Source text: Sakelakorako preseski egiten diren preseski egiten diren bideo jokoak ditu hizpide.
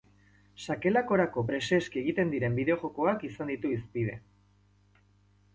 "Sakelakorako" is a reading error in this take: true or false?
false